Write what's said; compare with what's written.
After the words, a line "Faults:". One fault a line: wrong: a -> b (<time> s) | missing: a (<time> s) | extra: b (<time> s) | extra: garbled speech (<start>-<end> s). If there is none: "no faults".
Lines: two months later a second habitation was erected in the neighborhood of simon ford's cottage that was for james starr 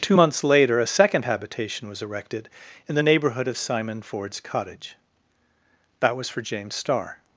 two months later a second habitation was erected in the neighborhood of simon ford's cottage that was for james starr
Faults:
no faults